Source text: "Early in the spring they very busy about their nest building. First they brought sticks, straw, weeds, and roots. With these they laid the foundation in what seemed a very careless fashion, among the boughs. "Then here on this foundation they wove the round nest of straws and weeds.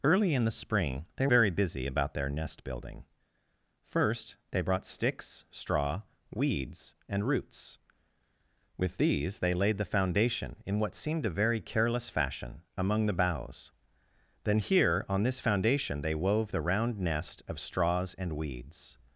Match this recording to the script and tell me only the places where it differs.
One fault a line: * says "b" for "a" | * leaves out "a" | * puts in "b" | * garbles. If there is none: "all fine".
all fine